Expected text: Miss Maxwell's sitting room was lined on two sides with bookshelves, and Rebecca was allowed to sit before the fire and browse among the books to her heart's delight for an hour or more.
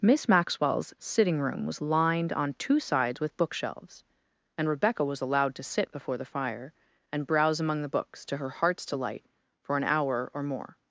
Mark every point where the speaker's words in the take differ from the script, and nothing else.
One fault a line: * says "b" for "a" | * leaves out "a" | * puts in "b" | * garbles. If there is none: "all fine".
all fine